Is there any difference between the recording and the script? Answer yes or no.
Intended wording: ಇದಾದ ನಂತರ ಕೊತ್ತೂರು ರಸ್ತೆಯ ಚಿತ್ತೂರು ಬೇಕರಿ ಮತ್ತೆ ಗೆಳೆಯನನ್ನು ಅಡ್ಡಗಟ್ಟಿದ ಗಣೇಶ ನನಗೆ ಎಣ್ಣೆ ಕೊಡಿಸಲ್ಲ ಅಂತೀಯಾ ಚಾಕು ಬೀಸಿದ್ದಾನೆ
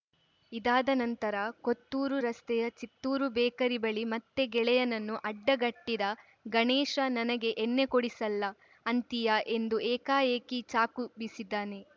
yes